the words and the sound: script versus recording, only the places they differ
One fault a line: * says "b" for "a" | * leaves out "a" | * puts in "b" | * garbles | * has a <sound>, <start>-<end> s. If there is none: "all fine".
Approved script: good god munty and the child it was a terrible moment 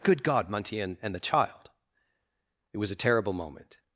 * puts in "and"